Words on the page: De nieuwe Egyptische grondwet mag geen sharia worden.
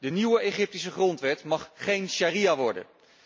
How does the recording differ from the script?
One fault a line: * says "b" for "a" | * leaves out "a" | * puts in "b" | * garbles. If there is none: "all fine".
all fine